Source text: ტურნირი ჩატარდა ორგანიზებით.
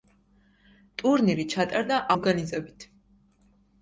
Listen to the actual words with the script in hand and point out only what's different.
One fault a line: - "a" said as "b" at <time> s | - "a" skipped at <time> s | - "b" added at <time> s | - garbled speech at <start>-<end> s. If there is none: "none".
none